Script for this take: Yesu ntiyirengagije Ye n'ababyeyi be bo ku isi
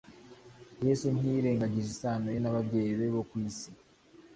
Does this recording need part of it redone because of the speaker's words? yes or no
yes